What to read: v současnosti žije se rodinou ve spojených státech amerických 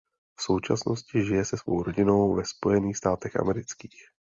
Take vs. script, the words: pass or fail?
fail